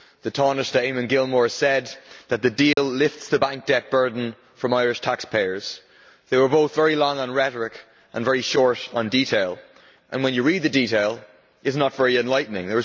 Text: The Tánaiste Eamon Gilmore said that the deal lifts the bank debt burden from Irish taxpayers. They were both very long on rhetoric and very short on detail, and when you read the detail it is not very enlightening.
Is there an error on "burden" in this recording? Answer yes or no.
no